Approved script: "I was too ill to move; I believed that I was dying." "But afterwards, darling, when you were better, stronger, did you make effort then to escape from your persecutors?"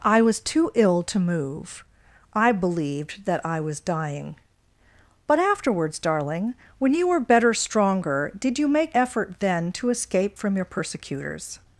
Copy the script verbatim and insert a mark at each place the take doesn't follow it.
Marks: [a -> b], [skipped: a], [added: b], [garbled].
"I was too ill to move; I believed that I was dying." "But afterwards, darling, when you were better, stronger, did you make effort then to escape from your persecutors?"